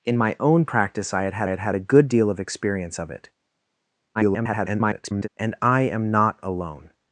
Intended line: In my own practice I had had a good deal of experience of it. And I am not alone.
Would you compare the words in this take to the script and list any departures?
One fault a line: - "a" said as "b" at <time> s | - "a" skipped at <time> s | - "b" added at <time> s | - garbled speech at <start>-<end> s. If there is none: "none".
- "had had" added at 1.5 s
- garbled speech at 4.1-5.3 s